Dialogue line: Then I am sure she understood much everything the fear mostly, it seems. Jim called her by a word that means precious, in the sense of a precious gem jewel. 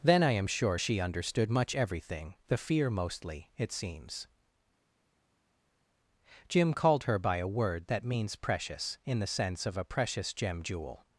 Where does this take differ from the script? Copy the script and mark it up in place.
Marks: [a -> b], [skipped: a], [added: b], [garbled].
Then I am sure she understood much everything the fear mostly, it seems. Jim called her by a word that means precious, in the sense of a precious gem jewel.